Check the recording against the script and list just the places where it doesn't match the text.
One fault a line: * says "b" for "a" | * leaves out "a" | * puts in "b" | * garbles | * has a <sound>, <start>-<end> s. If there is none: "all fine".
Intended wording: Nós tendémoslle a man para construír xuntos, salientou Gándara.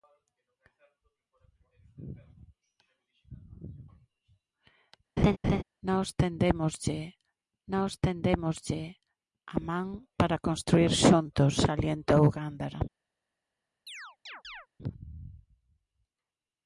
* has a laugh, 5.2-5.6 s
* puts in "nós tendémoslle"
* has a chirp, 13.9-14.7 s